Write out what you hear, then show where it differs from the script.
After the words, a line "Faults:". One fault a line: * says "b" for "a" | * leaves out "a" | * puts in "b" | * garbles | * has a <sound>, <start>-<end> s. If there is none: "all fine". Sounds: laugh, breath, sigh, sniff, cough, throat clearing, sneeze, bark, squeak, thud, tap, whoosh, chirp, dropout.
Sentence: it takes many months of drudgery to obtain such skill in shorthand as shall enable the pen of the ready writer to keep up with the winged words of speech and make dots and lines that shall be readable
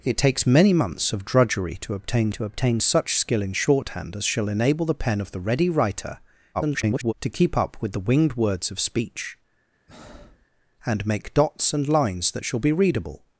it takes many months of drudgery to obtain to obtain such skill in shorthand as shall enable the pen of the ready writer [garbled] to keep up with the winged words of speech and make dots and lines that shall be readable
Faults:
* puts in "to obtain"
* garbles
* has a breath, 9.9-10.5 s